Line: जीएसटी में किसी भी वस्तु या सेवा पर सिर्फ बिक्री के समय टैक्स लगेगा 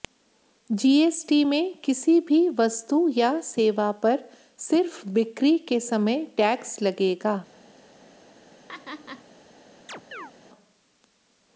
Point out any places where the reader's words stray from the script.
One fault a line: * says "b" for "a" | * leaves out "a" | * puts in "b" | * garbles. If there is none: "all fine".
all fine